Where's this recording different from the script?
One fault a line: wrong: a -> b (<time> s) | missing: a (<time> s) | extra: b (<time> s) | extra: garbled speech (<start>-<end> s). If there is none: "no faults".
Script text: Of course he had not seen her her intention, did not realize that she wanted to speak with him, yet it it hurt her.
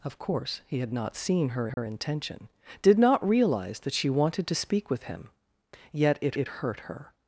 no faults